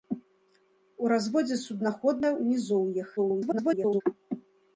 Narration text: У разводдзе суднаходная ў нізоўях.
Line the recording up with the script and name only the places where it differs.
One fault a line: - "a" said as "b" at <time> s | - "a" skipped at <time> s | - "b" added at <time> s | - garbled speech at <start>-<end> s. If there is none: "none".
- garbled speech at 3.2-4.0 s